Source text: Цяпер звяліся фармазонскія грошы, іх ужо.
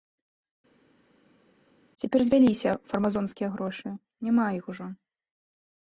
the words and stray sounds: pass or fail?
fail